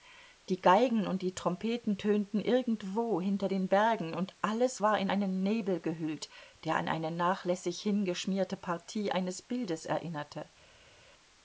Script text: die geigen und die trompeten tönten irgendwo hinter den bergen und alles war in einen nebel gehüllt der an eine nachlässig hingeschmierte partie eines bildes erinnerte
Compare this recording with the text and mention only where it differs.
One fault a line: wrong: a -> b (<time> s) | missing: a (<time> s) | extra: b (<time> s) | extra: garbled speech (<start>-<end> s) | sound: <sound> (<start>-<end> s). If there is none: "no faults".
no faults